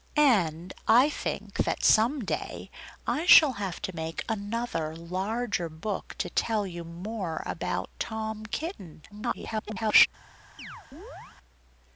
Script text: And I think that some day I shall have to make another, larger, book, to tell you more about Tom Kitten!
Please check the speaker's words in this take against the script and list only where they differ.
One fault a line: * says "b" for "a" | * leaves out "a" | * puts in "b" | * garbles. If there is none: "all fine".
* garbles